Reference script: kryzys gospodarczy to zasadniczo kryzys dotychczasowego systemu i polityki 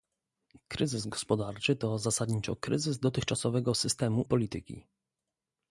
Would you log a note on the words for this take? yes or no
yes